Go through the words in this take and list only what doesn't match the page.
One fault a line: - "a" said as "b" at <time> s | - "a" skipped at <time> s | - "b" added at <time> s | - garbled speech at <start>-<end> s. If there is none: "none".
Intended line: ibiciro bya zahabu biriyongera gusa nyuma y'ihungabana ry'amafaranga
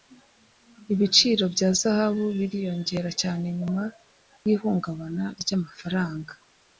- "gusa" said as "cyane" at 3.2 s